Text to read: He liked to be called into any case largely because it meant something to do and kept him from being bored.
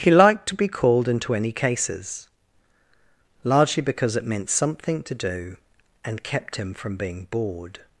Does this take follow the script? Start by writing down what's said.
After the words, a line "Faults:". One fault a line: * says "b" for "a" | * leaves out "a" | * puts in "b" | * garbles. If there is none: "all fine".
He liked to be called into any cases largely because it meant something to do and kept him from being bored.
Faults:
* says "cases" for "case"